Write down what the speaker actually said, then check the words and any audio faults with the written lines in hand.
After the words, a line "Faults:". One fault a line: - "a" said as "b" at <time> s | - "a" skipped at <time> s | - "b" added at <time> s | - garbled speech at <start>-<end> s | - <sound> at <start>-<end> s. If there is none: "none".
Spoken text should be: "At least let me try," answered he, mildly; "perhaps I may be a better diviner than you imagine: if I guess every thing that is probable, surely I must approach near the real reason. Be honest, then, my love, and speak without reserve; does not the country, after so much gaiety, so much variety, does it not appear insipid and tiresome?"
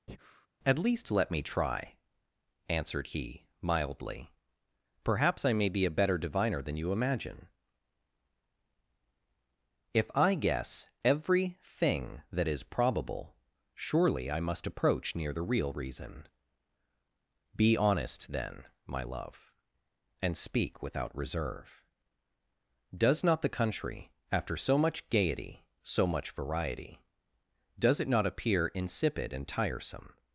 "At least let me try," answered he, mildly; "perhaps I may be a better diviner than you imagine: if I guess every thing that is probable, surely I must approach near the real reason. Be honest, then, my love, and speak without reserve; does not the country, after so much gaiety, so much variety, does it not appear insipid and tiresome?"
Faults:
- breath at 0.1-0.5 s